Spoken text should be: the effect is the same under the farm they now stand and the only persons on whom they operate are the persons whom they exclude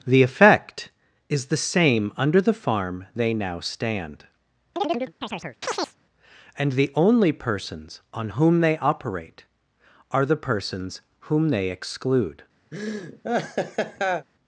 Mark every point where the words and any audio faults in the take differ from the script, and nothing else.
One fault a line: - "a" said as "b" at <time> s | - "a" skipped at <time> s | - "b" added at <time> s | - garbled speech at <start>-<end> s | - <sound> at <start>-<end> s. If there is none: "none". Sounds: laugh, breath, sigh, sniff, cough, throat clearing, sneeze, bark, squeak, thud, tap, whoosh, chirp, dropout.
- chirp at 4.8-6.0 s
- laugh at 12.7-14.3 s